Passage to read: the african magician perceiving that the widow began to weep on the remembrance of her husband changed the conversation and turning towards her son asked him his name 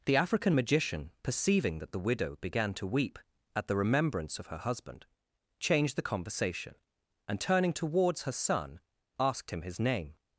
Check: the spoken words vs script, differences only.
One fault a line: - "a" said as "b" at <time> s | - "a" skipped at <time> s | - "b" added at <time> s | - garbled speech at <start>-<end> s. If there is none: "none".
- "on" said as "at" at 3.5 s